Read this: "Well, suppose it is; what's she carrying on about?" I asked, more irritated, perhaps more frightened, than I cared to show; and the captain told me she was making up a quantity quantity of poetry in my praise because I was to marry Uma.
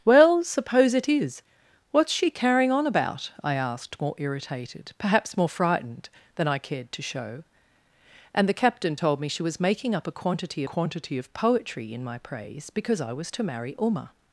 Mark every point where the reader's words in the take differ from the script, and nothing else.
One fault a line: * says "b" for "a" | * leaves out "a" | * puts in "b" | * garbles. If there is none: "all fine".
all fine